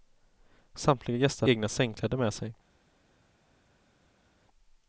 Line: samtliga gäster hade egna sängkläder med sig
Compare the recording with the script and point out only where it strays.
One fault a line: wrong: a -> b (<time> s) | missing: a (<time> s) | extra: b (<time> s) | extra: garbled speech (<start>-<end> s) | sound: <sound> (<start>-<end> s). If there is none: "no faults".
missing: hade (1.5 s)